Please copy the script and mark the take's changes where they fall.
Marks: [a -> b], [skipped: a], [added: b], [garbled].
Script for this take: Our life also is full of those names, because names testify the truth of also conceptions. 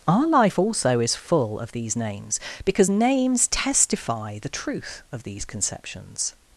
Our life also is full of [those -> these] names, because names testify the truth of [also -> these] conceptions.